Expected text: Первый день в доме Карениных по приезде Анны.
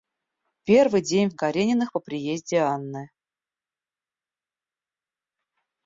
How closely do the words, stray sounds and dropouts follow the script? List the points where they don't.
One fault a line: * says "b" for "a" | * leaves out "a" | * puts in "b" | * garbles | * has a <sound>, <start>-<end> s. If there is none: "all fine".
* leaves out "доме"